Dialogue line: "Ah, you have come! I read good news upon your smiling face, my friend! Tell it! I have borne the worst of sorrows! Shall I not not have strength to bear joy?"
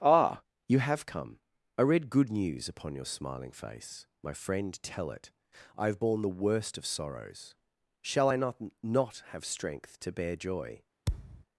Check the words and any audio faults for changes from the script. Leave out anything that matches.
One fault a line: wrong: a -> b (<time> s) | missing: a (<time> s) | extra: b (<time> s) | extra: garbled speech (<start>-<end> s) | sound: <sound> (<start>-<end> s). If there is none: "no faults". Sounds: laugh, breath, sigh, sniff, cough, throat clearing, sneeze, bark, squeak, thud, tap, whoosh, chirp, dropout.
sound: thud (11.1-11.4 s)